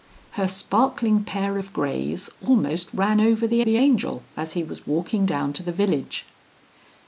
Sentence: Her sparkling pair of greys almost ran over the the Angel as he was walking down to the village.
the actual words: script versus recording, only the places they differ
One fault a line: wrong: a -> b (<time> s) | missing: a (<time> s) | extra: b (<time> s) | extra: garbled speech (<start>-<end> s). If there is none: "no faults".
no faults